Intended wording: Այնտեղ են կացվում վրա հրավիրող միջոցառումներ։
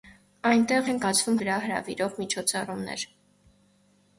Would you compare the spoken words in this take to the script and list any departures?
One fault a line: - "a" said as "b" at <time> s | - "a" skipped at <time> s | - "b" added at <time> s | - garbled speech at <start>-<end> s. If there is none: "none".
none